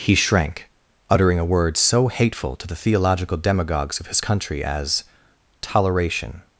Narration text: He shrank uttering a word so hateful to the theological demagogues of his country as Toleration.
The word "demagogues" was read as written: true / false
true